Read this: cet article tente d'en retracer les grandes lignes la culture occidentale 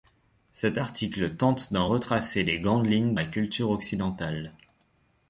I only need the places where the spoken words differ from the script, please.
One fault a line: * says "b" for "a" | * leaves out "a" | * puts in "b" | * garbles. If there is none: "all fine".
all fine